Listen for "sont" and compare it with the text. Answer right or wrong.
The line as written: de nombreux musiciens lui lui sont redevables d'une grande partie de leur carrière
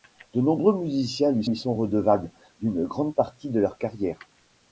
right